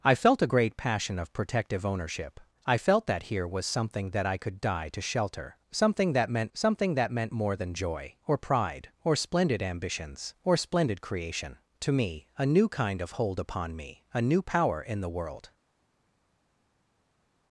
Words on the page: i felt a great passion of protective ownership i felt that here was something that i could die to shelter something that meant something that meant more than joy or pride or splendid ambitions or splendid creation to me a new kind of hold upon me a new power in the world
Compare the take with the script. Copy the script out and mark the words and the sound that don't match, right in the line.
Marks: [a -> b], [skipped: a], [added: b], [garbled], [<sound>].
i felt a great passion of protective ownership i felt that here was something that i could die to shelter something that meant something that meant more than joy or pride or splendid ambitions or splendid creation to me a new kind of hold upon me a new power in the world